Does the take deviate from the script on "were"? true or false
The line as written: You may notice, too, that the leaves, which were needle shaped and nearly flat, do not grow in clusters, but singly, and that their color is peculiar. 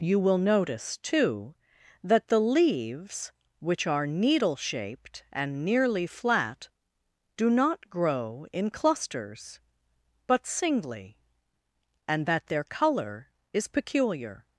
true